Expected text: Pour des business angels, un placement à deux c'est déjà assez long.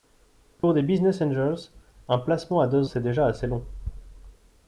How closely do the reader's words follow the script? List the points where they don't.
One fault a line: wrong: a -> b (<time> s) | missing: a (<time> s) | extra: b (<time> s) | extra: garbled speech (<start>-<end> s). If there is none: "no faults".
no faults